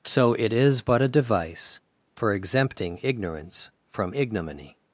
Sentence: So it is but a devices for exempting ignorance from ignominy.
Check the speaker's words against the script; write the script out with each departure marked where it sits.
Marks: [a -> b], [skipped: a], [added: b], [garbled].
So it is but a [devices -> device] for exempting ignorance from ignominy.